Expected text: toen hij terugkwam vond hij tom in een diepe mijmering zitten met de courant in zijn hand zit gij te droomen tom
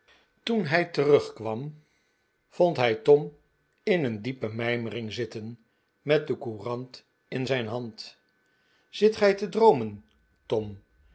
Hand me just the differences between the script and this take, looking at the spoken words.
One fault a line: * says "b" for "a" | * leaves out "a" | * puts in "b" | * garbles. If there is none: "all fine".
all fine